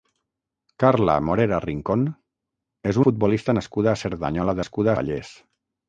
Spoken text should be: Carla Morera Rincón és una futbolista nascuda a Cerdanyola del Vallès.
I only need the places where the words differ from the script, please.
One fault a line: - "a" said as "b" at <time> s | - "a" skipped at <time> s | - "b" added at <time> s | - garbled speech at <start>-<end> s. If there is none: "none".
- "una" skipped at 3.0 s
- "del" said as "nascuda" at 4.6 s